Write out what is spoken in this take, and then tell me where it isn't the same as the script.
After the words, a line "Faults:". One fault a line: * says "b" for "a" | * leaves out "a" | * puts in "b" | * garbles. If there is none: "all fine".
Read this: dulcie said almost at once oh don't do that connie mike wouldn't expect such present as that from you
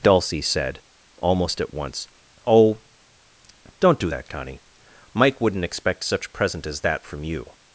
dulcie said almost at once oh don't do that connie mike wouldn't expect such present as that from you
Faults:
all fine